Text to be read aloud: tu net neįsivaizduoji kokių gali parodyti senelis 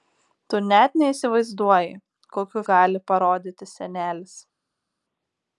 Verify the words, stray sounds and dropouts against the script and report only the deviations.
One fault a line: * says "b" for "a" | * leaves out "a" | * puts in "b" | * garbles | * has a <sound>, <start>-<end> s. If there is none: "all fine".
all fine